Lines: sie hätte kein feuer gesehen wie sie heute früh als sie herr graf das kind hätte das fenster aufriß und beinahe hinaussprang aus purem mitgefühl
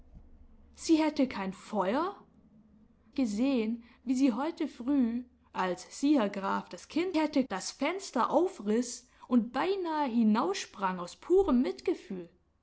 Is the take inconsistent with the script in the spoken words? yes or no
no